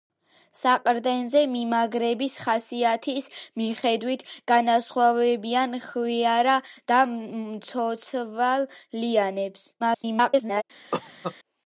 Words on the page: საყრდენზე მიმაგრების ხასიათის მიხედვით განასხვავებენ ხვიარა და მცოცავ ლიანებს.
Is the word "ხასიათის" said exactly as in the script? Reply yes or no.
yes